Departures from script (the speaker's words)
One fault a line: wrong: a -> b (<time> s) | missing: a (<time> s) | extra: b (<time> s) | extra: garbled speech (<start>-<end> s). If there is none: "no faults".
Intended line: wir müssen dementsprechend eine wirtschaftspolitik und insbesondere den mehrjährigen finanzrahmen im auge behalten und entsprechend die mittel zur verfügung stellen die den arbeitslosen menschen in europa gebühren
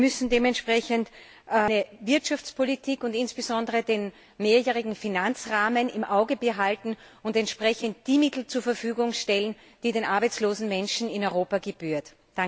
no faults